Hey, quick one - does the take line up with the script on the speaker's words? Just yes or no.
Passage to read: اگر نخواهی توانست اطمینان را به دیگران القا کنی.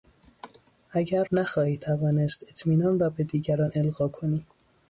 yes